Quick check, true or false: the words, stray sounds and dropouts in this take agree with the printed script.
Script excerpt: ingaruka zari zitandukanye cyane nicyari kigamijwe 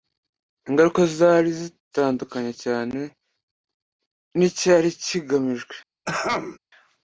false